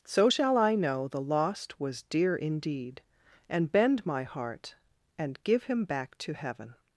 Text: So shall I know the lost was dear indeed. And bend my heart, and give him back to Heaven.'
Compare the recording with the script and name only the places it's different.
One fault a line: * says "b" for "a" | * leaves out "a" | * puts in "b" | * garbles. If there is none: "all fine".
all fine